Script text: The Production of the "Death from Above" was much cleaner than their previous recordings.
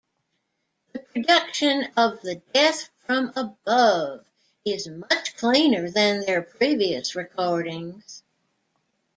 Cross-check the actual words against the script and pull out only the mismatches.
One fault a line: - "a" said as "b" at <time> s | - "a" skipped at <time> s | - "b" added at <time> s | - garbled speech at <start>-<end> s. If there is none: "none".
- "was" said as "is" at 4.7 s